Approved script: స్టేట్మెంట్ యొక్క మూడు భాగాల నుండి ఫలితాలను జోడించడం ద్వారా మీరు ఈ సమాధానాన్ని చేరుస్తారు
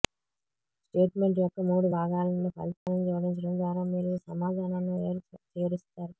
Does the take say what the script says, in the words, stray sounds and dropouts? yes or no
no